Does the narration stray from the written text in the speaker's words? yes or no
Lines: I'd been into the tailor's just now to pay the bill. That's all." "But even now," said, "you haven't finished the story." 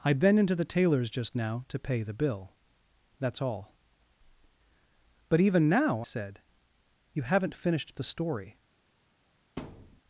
no